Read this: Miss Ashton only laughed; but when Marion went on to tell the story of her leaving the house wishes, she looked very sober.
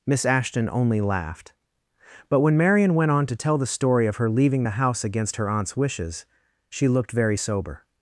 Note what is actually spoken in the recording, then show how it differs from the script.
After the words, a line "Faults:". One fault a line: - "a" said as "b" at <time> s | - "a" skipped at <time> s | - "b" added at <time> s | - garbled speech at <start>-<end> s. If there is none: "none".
Miss Ashton only laughed; but when Marion went on to tell the story of her leaving the house against her aunt's wishes, she looked very sober.
Faults:
- "against her aunt's" added at 5.0 s